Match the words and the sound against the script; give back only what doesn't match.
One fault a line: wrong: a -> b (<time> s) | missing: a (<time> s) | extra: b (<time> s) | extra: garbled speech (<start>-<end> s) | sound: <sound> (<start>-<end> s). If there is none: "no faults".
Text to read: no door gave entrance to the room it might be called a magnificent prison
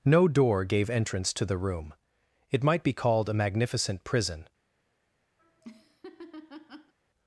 sound: laugh (5.4-6.9 s)